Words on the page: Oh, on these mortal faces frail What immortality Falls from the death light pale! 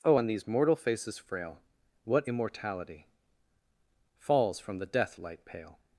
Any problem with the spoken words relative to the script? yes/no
no